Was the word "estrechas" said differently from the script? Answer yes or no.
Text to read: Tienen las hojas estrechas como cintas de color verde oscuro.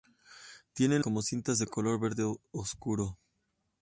yes